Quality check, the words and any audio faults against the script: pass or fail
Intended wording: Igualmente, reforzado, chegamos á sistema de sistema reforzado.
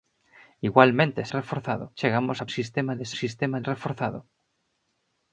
pass